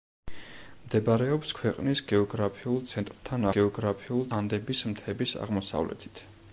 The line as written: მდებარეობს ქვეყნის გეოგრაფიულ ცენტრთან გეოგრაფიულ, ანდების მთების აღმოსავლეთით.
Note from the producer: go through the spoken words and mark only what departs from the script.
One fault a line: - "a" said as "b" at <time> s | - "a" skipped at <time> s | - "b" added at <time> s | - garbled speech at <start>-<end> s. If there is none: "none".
none